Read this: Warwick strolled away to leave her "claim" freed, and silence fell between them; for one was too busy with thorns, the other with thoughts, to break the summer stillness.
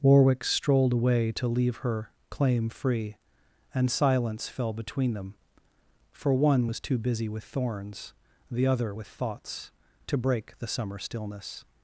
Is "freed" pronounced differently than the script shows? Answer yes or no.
yes